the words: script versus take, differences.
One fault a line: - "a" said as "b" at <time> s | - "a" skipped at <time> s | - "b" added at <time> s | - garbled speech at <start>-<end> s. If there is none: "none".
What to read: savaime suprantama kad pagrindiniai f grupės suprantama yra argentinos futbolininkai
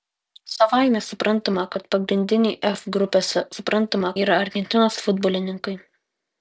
none